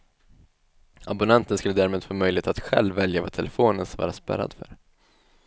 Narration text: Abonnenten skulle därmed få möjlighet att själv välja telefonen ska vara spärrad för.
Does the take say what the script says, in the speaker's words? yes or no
no